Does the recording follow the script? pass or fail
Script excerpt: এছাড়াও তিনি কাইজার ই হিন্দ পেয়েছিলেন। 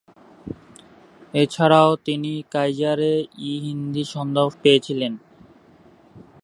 pass